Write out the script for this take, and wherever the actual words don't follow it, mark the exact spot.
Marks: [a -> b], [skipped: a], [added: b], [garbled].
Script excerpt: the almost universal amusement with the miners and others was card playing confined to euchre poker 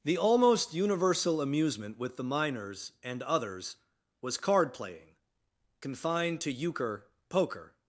the almost universal amusement with the miners and others was card playing confined to euchre poker